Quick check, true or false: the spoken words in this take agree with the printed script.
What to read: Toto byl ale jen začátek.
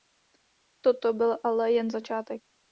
true